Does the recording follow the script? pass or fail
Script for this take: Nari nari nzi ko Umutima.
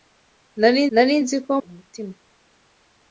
pass